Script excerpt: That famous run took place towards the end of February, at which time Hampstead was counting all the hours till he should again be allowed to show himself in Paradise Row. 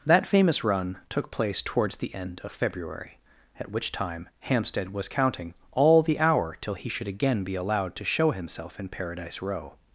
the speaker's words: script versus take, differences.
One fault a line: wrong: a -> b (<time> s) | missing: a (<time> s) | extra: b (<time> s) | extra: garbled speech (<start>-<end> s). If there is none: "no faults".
wrong: hours -> hour (6.2 s)